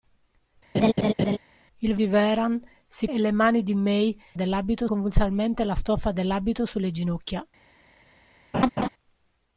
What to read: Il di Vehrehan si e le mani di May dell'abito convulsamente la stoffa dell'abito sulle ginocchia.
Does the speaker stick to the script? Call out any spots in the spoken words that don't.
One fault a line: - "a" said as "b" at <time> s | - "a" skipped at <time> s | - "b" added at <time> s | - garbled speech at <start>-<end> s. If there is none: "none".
none